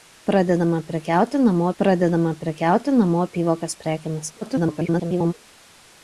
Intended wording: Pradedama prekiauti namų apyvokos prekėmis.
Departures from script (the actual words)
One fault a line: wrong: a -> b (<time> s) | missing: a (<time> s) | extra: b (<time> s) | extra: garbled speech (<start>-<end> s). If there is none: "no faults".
extra: pradedama prekiauti namų (1.8 s)
extra: garbled speech (4.4-5.3 s)